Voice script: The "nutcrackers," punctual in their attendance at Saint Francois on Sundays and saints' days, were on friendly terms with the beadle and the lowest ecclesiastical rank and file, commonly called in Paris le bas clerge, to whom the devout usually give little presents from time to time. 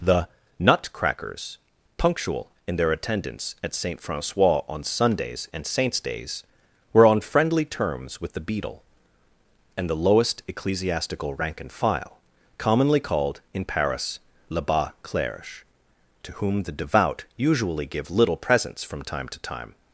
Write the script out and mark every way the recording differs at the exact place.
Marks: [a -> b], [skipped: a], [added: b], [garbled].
The "nutcrackers," punctual in their attendance at Saint Francois on Sundays and saints' days, were on friendly terms with the beadle and the lowest ecclesiastical rank and file, commonly called in Paris le bas clerge, to whom the devout usually give little presents from time to time.